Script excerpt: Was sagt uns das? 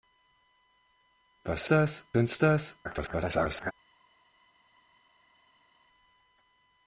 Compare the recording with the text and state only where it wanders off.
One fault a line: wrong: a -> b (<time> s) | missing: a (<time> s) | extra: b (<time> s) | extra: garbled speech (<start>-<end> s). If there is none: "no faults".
wrong: sagt -> das (1.7 s)
extra: garbled speech (2.8-3.7 s)